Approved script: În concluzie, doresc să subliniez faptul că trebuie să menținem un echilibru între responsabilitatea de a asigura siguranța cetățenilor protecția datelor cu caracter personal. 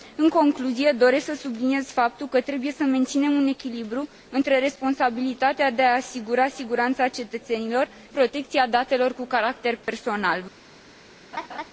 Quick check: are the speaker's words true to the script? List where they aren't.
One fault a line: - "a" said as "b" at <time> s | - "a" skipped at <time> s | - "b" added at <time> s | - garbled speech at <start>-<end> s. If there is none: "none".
none